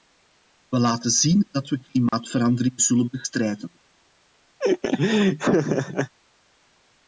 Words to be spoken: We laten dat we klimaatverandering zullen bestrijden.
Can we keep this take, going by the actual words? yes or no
no